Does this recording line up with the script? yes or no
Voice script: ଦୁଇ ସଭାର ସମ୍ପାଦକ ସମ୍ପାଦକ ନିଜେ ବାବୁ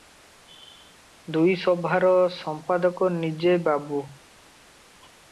no